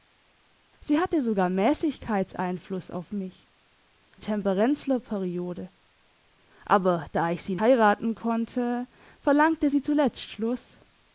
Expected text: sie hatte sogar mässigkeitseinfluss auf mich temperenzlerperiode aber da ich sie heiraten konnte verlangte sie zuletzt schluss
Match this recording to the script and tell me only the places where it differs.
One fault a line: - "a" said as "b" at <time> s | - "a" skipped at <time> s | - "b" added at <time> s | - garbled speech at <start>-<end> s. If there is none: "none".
none